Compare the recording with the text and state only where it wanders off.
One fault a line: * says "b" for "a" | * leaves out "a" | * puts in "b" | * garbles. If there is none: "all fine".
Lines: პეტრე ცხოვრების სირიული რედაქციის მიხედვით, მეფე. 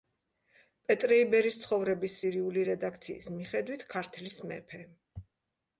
* puts in "იბერის"
* puts in "ქართლის"